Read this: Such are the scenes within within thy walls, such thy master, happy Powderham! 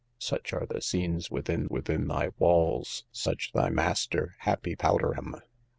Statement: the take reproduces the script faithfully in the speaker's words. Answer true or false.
true